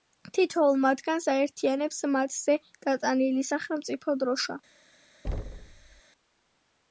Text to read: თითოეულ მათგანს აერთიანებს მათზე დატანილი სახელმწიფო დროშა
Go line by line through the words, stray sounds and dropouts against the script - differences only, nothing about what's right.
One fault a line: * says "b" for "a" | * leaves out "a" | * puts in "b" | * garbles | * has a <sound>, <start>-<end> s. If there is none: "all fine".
* has a thud, 5.2-6.0 s